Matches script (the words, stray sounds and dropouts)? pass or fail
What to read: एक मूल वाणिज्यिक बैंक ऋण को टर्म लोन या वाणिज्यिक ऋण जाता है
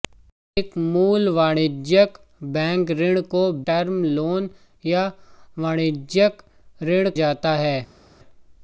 pass